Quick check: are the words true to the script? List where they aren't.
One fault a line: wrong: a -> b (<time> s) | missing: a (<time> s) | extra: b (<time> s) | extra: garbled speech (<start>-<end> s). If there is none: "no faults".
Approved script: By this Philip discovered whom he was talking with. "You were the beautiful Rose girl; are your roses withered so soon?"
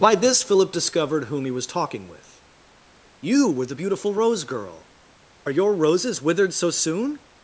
no faults